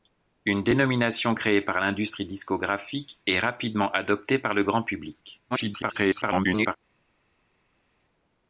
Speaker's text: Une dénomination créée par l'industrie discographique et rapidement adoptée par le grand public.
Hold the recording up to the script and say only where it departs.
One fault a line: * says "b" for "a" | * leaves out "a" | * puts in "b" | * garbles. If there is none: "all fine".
* garbles